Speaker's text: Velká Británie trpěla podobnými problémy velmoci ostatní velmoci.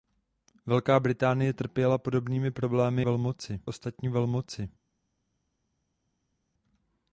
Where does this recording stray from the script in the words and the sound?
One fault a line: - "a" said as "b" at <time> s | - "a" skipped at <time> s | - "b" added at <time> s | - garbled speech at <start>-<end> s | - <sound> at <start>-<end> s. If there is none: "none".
none